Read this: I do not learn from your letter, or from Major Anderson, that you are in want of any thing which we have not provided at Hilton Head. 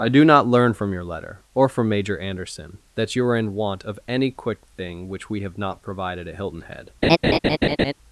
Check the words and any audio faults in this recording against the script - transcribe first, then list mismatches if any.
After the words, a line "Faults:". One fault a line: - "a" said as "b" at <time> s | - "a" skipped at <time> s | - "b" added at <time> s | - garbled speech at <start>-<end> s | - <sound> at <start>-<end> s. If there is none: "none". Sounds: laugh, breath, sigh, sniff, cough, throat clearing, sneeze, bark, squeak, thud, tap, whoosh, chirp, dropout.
I do not learn from your letter, or from Major Anderson, that you are in want of any quick thing which we have not provided at Hilton Head.
Faults:
- "quick" added at 4.3 s
- laugh at 7.0-7.9 s